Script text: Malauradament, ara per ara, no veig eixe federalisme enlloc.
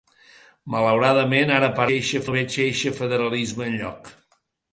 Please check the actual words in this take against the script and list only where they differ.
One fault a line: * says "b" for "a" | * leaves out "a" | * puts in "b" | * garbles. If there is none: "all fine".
* says "eixe" for "ara"